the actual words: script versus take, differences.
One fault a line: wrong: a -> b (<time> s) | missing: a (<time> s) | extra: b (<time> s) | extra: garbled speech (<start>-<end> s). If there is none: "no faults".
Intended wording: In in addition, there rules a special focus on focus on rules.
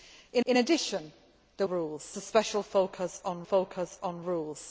no faults